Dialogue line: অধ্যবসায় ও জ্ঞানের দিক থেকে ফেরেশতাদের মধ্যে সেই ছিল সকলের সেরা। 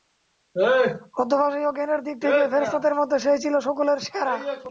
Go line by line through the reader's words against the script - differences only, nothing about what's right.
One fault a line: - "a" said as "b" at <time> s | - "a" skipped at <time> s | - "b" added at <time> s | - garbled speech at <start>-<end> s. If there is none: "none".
none